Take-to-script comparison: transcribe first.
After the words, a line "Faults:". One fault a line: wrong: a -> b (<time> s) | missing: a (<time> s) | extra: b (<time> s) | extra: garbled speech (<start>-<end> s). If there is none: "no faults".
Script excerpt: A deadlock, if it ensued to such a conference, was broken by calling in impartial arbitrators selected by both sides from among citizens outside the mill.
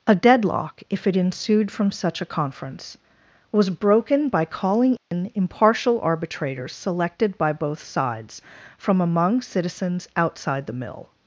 A deadlock, if it ensued from such a conference, was broken by calling in impartial arbitrators selected by both sides from among citizens outside the mill.
Faults:
wrong: to -> from (1.7 s)